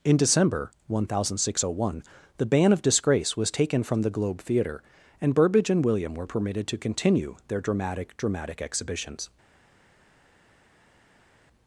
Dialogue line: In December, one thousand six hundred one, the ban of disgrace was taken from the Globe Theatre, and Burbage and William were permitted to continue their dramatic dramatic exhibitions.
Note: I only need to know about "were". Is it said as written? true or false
true